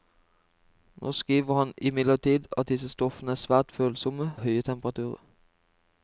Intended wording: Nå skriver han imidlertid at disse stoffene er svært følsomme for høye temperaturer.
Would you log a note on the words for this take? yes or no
yes